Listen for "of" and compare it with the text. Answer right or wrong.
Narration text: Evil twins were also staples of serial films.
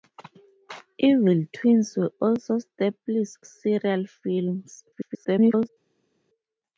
wrong